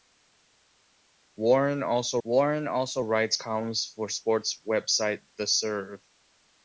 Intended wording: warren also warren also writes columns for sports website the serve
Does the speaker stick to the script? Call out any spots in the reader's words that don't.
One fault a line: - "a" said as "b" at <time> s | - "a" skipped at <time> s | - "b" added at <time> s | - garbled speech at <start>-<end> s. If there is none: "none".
none